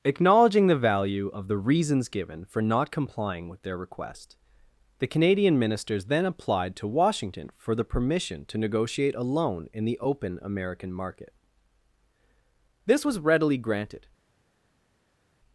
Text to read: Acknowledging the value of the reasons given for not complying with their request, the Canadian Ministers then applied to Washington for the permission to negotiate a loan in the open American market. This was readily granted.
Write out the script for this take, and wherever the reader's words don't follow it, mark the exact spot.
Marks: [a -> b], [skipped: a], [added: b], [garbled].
Acknowledging the value of the reasons given for not complying with their request, the Canadian Ministers then applied to Washington for the permission to negotiate a loan in the open American market. This was readily granted.